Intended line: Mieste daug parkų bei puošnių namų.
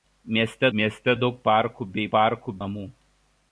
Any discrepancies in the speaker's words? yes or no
yes